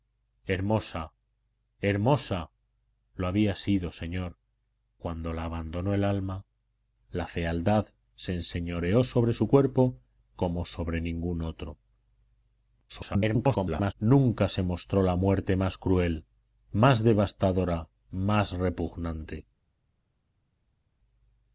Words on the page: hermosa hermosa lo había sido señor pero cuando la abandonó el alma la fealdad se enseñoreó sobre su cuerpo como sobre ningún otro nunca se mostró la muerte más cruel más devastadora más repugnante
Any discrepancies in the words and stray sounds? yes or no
yes